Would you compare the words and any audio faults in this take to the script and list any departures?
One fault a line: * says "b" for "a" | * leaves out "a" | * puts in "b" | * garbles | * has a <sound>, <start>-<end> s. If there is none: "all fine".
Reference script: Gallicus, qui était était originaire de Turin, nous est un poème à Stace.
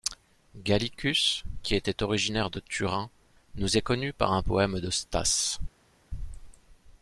* leaves out "était"
* puts in "connu par"
* says "de" for "à"